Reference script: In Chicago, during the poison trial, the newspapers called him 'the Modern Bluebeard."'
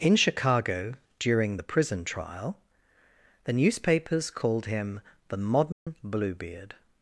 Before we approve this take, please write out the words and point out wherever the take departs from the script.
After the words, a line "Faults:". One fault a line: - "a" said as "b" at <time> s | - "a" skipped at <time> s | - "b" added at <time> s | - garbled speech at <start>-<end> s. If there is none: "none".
In Chicago, during the prison trial, the newspapers called him 'the Modern Bluebeard."'
Faults:
- "poison" said as "prison" at 1.6 s